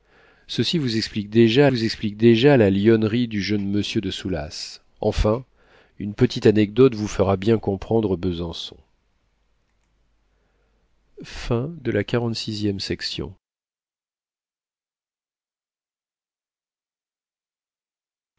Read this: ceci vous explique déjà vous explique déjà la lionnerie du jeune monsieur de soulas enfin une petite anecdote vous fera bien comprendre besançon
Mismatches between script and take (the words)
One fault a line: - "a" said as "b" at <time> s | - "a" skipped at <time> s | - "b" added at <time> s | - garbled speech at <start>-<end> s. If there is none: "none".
none